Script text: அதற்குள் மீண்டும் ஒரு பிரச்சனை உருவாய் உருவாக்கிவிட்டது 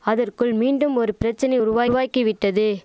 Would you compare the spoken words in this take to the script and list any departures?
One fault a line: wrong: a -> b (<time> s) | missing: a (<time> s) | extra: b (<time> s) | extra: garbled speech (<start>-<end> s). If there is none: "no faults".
no faults